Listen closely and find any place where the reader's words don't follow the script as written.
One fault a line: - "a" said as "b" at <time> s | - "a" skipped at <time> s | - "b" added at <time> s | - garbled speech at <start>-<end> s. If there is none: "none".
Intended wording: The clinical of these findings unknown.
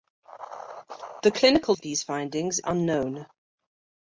none